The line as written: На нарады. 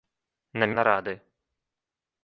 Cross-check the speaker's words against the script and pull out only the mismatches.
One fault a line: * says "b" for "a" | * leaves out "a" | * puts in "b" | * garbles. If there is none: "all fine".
all fine